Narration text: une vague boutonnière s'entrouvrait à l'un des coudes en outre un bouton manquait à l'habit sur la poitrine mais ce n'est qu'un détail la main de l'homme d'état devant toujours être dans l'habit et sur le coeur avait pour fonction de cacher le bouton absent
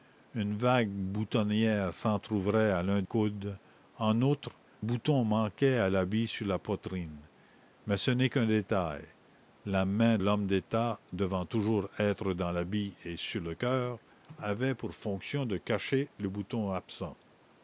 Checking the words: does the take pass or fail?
fail